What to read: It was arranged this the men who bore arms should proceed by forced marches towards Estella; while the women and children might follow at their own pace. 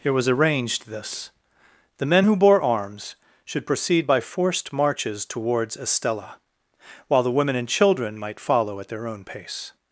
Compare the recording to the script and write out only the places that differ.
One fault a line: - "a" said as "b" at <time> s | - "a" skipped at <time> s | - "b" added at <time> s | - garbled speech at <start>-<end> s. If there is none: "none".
none